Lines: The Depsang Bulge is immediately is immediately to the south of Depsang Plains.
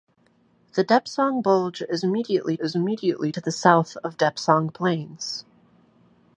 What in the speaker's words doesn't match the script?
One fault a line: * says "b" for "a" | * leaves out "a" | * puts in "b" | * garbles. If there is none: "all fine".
all fine